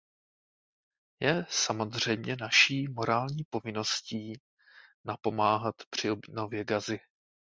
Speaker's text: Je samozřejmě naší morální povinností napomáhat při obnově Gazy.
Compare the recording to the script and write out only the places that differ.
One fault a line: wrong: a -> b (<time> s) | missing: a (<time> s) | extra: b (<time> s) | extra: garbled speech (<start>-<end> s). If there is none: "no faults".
no faults